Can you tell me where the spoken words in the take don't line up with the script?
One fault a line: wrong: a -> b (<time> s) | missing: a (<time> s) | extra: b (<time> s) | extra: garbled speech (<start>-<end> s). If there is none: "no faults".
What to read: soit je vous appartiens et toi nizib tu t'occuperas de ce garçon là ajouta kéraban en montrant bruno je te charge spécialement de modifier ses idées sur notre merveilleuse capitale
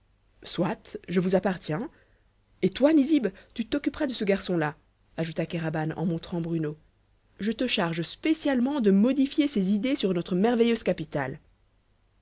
no faults